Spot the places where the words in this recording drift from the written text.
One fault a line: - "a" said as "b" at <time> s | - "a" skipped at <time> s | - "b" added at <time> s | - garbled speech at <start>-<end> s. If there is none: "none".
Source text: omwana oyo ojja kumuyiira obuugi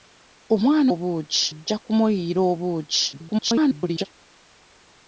- "oyo" said as "obuugi" at 0.9 s
- garbled speech at 3.1-4.1 s